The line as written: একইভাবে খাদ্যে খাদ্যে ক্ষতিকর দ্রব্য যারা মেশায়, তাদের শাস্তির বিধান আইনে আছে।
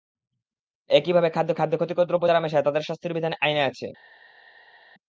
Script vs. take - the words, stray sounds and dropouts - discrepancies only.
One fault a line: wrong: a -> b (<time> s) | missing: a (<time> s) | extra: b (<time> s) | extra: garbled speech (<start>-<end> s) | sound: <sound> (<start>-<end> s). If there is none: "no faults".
no faults